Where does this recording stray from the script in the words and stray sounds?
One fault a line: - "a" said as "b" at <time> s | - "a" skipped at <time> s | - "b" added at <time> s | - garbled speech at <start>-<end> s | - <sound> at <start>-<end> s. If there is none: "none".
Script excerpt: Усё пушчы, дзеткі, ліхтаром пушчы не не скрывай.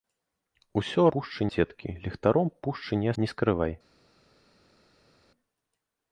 none